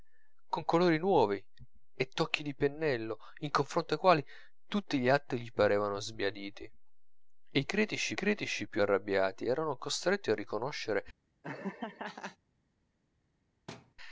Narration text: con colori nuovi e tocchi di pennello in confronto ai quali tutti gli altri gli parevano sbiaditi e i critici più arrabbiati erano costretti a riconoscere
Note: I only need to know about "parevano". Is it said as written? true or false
true